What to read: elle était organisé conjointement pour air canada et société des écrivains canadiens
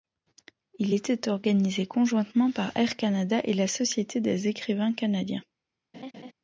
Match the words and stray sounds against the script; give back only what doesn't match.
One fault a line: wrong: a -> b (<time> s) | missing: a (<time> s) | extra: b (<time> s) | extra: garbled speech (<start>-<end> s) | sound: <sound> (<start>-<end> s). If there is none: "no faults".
wrong: elle -> il (0.8 s)
wrong: pour -> par (2.5 s)
extra: la (3.5 s)
sound: laugh (5.9-6.3 s)